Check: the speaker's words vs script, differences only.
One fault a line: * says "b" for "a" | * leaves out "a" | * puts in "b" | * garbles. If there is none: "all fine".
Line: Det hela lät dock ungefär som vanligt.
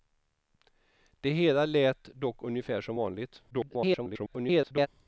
* garbles